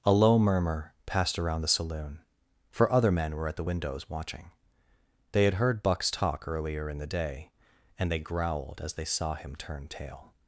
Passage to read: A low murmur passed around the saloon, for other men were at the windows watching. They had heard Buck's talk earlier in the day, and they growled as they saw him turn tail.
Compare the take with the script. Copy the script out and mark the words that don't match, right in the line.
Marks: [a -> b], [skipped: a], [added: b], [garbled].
A low murmur passed around the saloon, for other men were at the windows watching. They had heard Buck's talk earlier in the day, and they growled as they saw him turn tail.